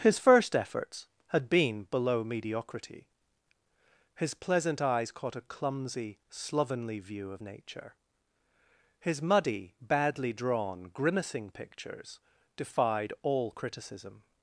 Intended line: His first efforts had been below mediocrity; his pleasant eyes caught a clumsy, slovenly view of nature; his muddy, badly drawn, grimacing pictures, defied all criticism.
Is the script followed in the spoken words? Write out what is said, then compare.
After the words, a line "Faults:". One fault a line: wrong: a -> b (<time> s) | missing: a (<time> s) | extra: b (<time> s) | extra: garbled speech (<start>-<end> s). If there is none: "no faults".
His first efforts had been below mediocrity; his pleasant eyes caught a clumsy, slovenly view of nature; his muddy, badly drawn, grimacing pictures, defied all criticism.
Faults:
no faults